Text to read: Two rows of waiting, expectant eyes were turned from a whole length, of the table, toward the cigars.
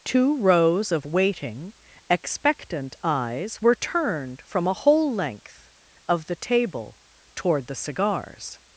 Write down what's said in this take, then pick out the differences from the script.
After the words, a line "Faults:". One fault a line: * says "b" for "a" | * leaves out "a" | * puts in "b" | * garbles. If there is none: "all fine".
Two rows of waiting, expectant eyes were turned from a whole length, of the table, toward the cigars.
Faults:
all fine